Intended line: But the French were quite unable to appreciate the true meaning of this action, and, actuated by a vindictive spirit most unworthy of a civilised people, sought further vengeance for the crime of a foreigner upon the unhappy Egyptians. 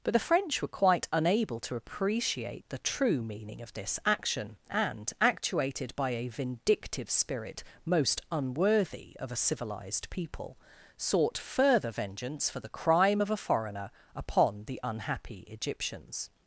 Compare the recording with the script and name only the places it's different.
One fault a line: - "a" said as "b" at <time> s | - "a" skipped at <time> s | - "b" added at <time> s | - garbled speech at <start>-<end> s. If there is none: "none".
none